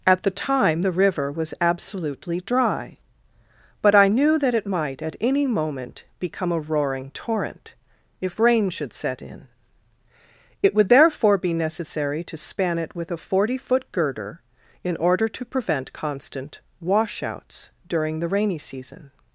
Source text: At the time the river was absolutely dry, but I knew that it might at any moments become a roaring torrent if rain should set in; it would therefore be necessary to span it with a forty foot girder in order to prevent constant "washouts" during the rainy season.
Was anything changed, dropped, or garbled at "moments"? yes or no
yes